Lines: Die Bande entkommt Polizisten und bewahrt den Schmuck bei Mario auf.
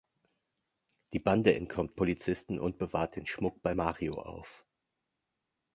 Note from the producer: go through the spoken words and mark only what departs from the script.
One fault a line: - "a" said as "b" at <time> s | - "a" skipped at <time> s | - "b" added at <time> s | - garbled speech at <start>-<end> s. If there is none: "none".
none